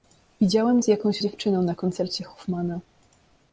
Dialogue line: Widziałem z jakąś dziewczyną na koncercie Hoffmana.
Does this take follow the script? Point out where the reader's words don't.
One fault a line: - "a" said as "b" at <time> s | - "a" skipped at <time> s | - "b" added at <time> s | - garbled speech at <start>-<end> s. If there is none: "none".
none